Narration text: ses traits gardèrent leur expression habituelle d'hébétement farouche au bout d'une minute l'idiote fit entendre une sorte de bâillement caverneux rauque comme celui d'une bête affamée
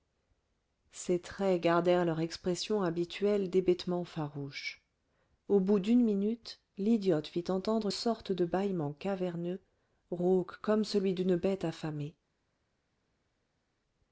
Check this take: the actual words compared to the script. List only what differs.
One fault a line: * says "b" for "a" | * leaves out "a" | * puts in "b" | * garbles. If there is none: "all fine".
* leaves out "une"